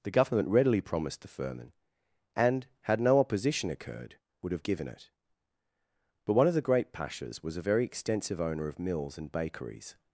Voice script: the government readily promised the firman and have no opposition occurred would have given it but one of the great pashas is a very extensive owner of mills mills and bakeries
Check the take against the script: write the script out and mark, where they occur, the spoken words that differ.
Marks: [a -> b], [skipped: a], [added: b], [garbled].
the government readily promised the firman and [have -> had] no opposition occurred would have given it but one of the great pashas [is -> was] a very extensive owner of mills [skipped: mills] and bakeries